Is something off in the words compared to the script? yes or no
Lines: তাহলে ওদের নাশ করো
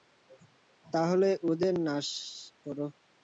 no